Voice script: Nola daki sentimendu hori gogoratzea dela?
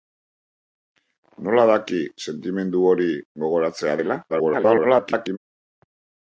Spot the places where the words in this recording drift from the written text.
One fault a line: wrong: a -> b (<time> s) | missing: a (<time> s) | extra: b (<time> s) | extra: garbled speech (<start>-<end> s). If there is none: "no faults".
extra: garbled speech (4.3-5.4 s)